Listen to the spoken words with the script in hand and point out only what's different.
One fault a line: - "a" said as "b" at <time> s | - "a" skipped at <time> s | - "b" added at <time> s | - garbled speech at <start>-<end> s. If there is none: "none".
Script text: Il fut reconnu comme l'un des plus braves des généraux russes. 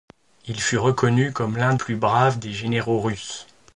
- "des" skipped at 1.8 s